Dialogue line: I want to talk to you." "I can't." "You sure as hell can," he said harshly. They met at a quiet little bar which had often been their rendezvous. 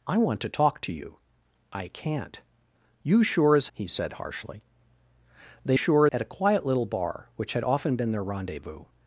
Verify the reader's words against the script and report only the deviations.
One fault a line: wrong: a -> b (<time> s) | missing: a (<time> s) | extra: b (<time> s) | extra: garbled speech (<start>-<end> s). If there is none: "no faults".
missing: hell can (3.7 s)
wrong: met -> sure (5.7 s)